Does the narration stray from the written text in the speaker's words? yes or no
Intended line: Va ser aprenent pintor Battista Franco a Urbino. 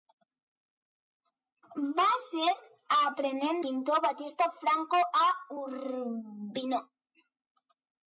no